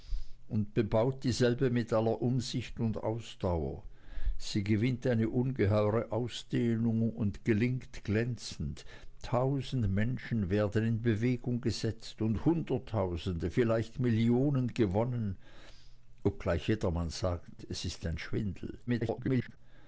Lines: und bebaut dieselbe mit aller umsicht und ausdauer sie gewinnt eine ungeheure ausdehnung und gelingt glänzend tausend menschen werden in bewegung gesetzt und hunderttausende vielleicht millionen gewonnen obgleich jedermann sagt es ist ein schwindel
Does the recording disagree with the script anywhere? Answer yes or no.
yes